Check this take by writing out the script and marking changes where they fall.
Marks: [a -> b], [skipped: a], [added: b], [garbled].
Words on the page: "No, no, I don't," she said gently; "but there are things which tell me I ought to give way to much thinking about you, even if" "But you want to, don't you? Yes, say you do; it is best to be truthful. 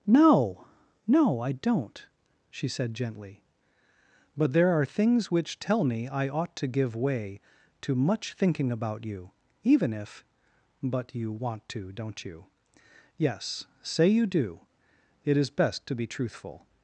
"No, no, I don't," she said gently; "but there are things which tell me I ought to give way to much thinking about you, even if" "But you want to, don't you? Yes, say you do; it is best to be truthful.